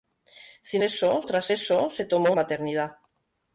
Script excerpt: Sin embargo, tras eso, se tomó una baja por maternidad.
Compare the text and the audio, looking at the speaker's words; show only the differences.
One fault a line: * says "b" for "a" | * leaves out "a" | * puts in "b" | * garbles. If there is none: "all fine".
* says "eso" for "embargo"
* leaves out "una baja por"